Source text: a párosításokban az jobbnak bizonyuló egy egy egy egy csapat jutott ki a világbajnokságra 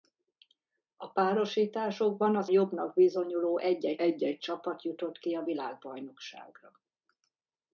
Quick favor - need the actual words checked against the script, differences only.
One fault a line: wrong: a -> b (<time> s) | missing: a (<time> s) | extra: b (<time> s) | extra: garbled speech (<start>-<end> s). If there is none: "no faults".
no faults